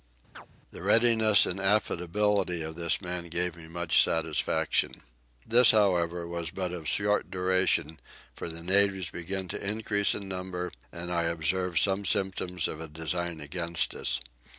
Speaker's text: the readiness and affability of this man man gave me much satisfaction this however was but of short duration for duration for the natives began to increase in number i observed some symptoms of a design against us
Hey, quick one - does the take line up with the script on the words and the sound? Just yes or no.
no